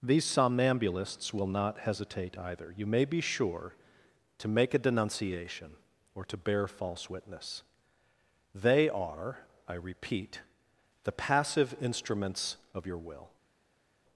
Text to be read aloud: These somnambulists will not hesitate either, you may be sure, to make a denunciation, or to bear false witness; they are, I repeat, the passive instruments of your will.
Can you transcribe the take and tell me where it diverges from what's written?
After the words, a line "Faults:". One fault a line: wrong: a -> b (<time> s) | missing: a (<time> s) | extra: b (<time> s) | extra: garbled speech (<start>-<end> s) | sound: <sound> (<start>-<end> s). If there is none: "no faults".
These somnambulists will not hesitate either, you may be sure, to make a denunciation, or to bear false witness; they are, I repeat, the passive instruments of your will.
Faults:
no faults